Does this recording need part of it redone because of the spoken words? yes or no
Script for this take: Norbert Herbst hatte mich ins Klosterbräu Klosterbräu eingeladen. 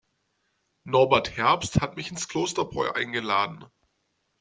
yes